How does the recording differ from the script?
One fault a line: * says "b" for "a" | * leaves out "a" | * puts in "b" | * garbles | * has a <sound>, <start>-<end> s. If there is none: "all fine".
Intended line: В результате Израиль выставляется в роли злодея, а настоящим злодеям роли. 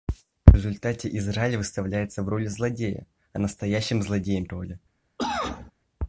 * has a cough, 5.2-5.7 s